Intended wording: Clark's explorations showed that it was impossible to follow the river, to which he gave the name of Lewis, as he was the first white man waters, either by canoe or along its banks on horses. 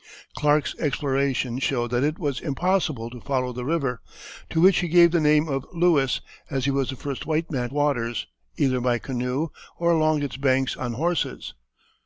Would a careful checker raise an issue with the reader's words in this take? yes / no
no